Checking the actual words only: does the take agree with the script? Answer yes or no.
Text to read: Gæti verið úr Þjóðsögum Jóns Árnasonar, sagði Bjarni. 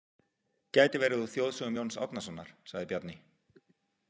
yes